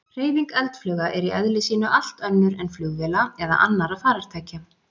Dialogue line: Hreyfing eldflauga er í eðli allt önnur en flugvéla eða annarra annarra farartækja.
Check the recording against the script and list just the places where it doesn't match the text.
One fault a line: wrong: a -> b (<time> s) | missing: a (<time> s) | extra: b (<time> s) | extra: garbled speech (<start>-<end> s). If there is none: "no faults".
extra: sínu (1.7 s)
missing: annarra (4.0 s)